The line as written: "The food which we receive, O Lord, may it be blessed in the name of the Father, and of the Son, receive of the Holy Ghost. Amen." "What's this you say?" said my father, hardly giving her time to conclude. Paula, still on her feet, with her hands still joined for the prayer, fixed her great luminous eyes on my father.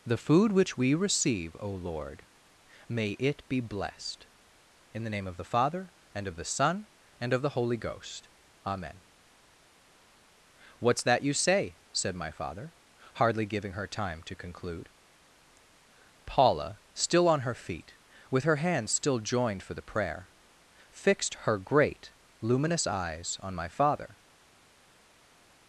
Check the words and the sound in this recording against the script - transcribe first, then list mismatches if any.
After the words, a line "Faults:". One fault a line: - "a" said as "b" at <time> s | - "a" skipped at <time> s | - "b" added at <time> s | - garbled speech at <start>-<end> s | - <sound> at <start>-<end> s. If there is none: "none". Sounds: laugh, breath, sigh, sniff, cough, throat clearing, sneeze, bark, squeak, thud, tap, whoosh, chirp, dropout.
"The food which we receive, O Lord, may it be blessed in the name of the Father, and of the Son, and of the Holy Ghost. Amen." "What's that you say?" said my father, hardly giving her time to conclude. Paula, still on her feet, with her hands still joined for the prayer, fixed her great luminous eyes on my father.
Faults:
- "receive" said as "and" at 7.2 s
- "this" said as "that" at 11.0 s